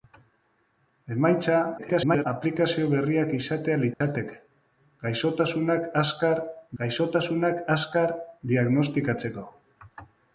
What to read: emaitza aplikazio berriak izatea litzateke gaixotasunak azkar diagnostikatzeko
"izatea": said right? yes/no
yes